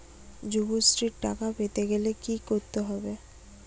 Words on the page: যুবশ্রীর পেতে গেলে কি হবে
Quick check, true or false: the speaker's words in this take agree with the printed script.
false